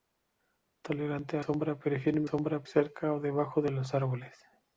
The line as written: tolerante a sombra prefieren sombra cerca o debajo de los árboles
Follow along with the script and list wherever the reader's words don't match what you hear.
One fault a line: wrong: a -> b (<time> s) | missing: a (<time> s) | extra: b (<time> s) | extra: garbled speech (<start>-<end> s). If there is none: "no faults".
no faults